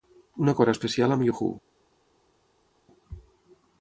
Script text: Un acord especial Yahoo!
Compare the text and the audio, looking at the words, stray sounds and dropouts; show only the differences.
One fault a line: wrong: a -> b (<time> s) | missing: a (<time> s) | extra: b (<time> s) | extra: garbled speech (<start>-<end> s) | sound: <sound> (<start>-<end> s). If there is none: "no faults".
extra: amb (1.2 s)